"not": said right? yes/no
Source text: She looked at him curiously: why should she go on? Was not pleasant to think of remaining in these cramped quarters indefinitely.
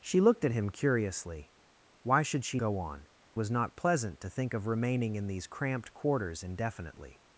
yes